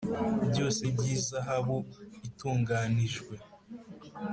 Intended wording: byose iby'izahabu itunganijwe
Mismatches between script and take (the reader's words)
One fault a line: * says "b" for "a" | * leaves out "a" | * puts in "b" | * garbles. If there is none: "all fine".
all fine